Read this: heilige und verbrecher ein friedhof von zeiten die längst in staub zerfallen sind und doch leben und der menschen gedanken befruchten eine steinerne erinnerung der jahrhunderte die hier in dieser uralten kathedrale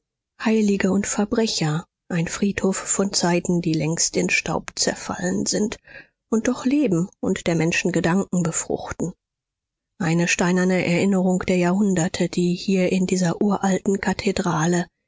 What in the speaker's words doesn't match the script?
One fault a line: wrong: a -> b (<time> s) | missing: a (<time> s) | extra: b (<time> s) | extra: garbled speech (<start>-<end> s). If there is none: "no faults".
no faults